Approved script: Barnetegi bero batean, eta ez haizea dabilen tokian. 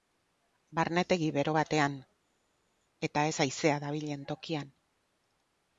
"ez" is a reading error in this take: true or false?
false